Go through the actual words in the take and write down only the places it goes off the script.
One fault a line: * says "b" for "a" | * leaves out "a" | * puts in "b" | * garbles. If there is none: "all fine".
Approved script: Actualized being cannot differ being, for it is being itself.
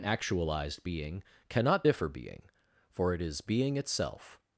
all fine